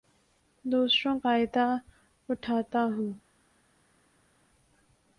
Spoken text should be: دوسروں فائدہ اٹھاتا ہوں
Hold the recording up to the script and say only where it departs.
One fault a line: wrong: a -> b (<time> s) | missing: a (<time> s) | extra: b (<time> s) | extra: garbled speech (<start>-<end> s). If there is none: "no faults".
no faults